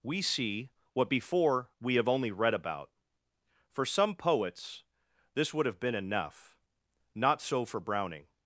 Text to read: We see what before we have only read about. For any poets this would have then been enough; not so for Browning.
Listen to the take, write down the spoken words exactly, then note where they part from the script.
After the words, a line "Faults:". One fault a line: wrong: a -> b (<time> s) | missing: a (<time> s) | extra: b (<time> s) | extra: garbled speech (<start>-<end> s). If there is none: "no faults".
We see what before we have only read about. For some poets this would have been enough; not so for Browning.
Faults:
wrong: any -> some (3.9 s)
missing: then (5.8 s)